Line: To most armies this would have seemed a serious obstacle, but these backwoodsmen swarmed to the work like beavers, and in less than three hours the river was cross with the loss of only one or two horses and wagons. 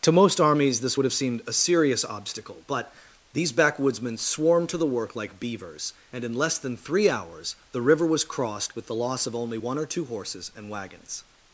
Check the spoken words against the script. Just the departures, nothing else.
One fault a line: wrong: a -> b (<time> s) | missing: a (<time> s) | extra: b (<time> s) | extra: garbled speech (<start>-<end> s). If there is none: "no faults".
wrong: cross -> crossed (8.2 s)